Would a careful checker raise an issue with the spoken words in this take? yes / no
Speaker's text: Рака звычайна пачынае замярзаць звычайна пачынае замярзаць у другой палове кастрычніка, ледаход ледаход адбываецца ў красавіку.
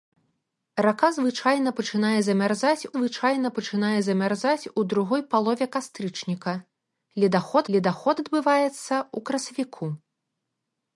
no